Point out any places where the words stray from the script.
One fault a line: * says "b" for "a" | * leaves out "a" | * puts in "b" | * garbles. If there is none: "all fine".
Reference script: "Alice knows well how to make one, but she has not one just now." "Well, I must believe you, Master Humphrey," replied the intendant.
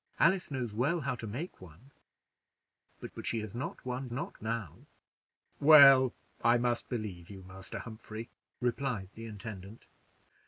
* puts in "but"
* says "not" for "just"